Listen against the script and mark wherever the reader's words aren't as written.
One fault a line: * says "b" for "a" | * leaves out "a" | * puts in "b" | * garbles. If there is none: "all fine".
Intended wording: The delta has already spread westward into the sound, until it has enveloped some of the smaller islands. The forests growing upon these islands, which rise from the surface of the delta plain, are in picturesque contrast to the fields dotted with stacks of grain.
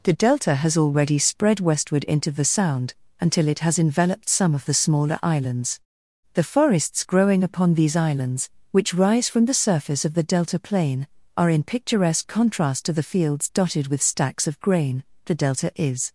* puts in "The delta is"